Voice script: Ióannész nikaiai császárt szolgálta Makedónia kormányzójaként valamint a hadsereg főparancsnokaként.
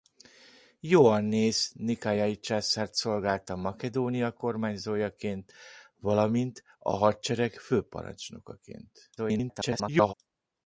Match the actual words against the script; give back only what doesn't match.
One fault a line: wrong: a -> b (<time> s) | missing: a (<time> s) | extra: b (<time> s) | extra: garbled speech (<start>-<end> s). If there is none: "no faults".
extra: garbled speech (9.2-10.1 s)